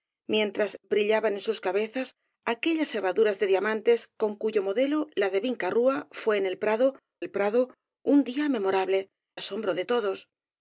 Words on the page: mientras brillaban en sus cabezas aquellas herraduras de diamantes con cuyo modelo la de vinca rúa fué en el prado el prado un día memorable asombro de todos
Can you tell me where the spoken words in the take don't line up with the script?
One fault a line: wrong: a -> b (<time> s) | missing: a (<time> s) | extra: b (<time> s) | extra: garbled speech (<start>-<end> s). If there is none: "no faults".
no faults